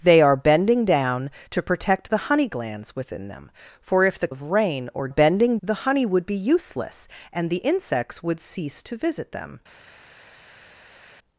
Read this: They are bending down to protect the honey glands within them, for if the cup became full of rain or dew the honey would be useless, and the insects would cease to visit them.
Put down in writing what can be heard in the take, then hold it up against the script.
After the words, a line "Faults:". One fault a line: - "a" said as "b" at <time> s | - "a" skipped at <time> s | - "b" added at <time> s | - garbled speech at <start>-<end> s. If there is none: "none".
They are bending down to protect the honey glands within them, for if the of rain or bending the honey would be useless, and the insects would cease to visit them.
Faults:
- "cup became full" skipped at 4.3 s
- "dew" said as "bending" at 5.1 s